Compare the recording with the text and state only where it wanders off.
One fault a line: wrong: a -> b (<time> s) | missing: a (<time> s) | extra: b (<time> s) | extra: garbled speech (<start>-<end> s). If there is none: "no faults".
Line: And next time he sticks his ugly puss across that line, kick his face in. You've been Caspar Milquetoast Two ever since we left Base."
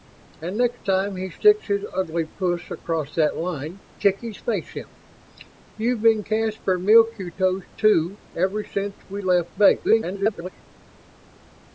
extra: garbled speech (9.8-10.5 s)